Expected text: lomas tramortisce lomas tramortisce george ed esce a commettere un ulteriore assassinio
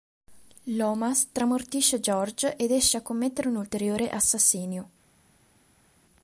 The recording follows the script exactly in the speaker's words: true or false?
false